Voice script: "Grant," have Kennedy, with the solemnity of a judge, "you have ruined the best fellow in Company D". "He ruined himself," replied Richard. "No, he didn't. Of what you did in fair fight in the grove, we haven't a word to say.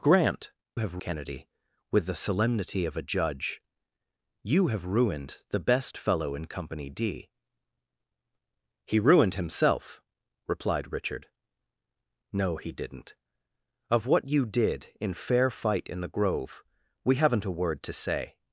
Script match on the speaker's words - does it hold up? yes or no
yes